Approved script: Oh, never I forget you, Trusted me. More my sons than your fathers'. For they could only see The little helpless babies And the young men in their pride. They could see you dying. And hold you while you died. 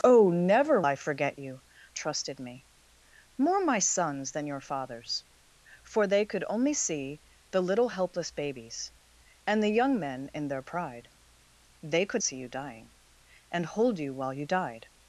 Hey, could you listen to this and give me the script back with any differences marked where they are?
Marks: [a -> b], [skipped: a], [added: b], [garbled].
Oh, never I forget you, Trusted me. More my sons than your fathers'. For they could only see The little helpless babies And the young men in their pride. They could see you dying. And hold you while you died.